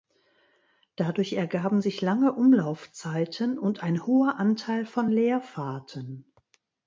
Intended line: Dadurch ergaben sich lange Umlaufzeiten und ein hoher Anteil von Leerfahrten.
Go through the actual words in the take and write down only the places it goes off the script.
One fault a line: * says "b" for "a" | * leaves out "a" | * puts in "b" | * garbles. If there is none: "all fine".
all fine